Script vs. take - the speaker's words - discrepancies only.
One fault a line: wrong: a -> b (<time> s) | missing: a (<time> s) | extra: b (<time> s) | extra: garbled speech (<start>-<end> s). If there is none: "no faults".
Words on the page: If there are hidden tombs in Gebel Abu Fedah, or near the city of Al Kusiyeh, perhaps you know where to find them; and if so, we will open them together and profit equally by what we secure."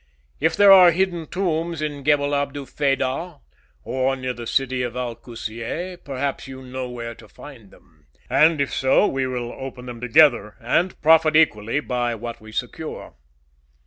no faults